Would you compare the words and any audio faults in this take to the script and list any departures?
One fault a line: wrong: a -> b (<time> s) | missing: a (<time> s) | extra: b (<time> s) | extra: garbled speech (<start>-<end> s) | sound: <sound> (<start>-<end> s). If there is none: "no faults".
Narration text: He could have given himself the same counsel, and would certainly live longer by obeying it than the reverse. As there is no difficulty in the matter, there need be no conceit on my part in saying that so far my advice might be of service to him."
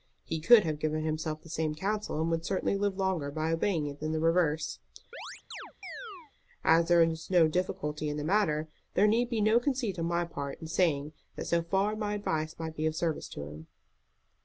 sound: chirp (5.1-6.3 s)